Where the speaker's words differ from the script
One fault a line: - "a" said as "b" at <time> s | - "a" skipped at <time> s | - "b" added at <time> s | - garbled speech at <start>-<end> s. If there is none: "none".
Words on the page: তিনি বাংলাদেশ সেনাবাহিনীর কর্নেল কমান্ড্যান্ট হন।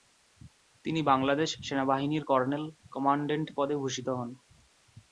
- "পদে ভূষিত" added at 3.6 s